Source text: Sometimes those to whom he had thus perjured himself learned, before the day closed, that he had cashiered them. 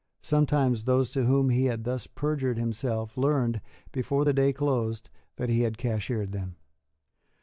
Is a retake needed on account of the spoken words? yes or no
no